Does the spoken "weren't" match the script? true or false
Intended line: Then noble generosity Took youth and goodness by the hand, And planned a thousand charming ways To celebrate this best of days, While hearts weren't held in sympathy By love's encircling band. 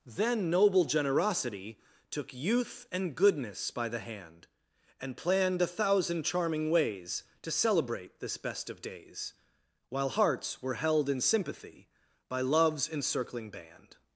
false